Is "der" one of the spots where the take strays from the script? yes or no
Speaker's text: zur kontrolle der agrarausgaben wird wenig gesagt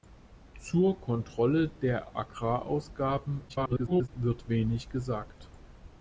no